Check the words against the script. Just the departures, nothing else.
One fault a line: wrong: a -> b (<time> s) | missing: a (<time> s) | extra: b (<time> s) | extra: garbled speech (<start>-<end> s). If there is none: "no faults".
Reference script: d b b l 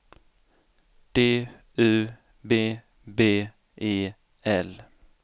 extra: u (1.8 s)
extra: e (3.8 s)